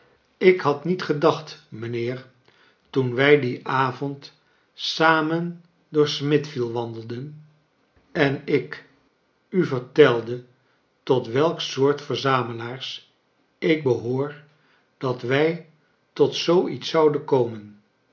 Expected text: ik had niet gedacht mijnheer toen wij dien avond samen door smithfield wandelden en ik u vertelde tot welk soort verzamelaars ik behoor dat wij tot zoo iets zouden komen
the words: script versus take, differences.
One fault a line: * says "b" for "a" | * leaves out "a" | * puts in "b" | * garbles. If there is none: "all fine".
all fine